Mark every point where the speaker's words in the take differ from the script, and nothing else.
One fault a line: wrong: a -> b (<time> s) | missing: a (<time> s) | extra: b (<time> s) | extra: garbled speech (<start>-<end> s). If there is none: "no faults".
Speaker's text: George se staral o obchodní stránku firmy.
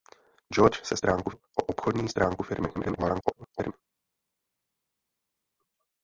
wrong: staral -> stránku (1.0 s)
extra: garbled speech (2.7-3.7 s)